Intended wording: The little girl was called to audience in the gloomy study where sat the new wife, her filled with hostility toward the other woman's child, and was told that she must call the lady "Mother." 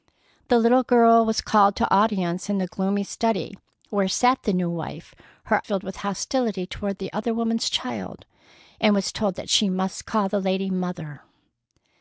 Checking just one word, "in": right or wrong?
right